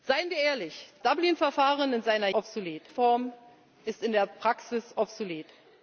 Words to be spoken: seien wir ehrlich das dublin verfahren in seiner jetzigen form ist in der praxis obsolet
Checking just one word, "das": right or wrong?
wrong